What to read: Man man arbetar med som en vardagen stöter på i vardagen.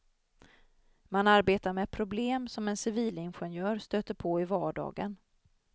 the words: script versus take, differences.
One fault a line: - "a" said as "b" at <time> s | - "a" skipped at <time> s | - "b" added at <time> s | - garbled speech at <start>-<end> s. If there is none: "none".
- "man" skipped at 1.3 s
- "problem" added at 1.9 s
- "vardagen" said as "civilingenjör" at 2.8 s